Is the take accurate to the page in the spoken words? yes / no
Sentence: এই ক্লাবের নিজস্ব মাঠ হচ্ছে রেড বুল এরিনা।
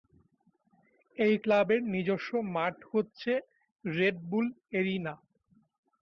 yes